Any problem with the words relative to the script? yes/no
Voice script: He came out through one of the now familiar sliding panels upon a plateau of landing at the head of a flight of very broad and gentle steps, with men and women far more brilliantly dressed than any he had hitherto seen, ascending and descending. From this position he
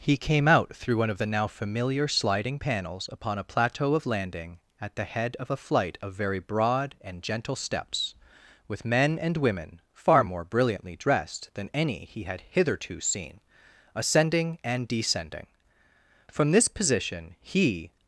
no